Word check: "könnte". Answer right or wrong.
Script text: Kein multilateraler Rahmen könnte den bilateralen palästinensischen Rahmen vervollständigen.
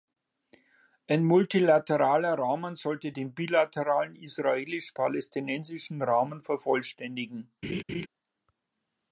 wrong